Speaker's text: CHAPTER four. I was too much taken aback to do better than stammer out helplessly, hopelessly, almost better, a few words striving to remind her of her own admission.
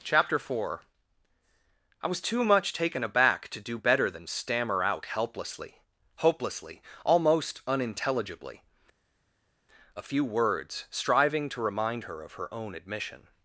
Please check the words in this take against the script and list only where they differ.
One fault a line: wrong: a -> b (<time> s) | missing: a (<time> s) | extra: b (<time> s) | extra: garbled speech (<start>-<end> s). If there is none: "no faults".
wrong: better -> unintelligibly (7.7 s)